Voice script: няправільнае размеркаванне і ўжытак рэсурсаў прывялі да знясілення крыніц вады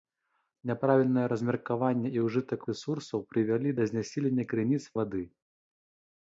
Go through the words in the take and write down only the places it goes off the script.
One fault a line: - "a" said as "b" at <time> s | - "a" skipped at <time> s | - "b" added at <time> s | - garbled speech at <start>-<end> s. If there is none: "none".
none